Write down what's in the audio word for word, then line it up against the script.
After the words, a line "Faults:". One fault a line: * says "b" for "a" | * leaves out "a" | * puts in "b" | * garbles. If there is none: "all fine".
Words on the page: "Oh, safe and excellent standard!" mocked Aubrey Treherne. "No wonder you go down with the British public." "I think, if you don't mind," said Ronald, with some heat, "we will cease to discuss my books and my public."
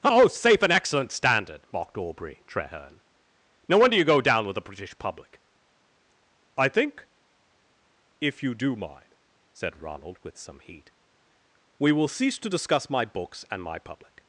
"Oh, safe and excellent standard!" mocked Aubrey Treherne. "No wonder you go down with the British public." "I think, if you do mind," said Ronald, with some heat, "we will cease to discuss my books and my public."
Faults:
* says "do" for "don't"